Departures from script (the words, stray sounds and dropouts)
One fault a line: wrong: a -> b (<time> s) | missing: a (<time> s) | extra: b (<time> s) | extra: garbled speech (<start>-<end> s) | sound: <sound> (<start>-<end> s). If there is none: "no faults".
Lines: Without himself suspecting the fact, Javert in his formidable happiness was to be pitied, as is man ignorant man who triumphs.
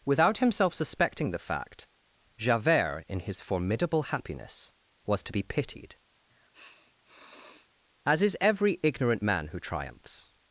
sound: sniff (6.3-7.7 s)
wrong: man -> every (8.4 s)